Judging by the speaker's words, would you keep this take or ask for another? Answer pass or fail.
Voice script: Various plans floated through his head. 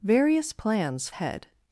fail